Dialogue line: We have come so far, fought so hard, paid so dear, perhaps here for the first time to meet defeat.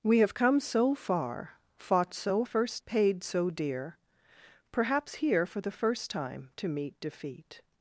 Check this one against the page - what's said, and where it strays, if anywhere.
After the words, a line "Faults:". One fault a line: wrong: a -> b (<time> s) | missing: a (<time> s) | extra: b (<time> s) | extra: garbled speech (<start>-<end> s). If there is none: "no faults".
We have come so far, fought so first, paid so dear, perhaps here for the first time to meet defeat.
Faults:
wrong: hard -> first (2.4 s)